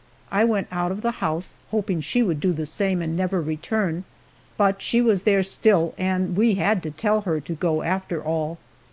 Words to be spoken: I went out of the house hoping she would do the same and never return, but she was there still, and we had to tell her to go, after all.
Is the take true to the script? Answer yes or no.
yes